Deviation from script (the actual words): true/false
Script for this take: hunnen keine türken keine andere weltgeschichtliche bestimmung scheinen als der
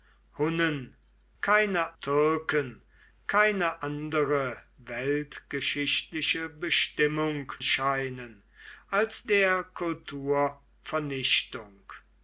false